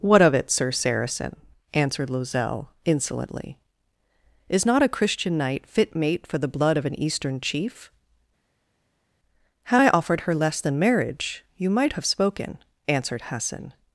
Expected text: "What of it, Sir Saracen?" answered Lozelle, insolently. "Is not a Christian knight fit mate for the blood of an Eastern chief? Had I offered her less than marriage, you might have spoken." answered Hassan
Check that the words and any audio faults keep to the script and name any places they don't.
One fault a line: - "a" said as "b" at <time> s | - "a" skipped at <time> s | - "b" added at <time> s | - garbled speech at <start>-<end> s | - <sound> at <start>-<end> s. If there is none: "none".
none